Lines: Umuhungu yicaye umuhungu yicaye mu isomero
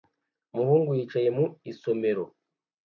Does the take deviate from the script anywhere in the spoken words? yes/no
yes